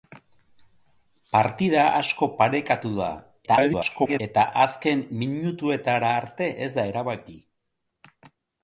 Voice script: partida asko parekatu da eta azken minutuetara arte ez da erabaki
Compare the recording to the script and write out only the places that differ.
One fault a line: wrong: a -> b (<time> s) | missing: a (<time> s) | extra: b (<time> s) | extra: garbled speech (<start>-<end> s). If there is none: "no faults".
extra: garbled speech (3.5-4.2 s)